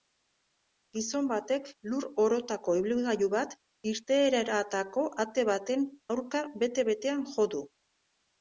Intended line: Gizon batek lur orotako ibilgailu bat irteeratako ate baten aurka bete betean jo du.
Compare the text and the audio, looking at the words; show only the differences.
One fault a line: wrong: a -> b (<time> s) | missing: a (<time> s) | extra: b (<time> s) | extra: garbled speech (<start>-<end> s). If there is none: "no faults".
no faults